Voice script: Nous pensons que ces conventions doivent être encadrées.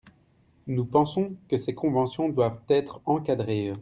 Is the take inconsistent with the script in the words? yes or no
no